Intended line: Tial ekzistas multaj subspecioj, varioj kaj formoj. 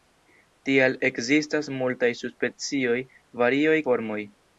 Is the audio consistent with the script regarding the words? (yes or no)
no